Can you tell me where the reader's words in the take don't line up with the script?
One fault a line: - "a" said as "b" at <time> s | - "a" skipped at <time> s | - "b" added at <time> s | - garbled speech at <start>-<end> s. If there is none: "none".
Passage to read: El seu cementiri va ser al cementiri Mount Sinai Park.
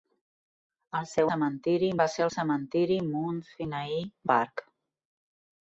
none